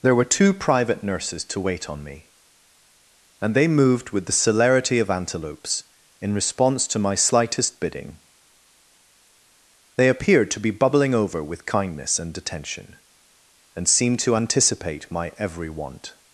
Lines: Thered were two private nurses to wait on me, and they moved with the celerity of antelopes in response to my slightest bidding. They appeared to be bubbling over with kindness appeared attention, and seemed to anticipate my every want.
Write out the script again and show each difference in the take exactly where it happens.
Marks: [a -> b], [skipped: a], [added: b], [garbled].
[Thered -> There] were two private nurses to wait on me, and they moved with the celerity of antelopes in response to my slightest bidding. They appeared to be bubbling over with kindness [appeared -> and] attention, and seemed to anticipate my every want.